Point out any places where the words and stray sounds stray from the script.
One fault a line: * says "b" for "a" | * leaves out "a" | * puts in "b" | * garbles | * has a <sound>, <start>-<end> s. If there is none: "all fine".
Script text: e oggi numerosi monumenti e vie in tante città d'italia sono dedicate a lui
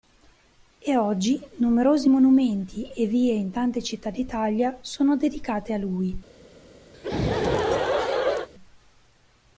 * has a laugh, 6.9-8.5 s